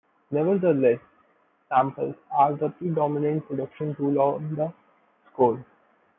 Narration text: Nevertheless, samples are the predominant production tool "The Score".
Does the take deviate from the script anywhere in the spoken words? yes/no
yes